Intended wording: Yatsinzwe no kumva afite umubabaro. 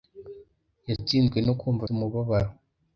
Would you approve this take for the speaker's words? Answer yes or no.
no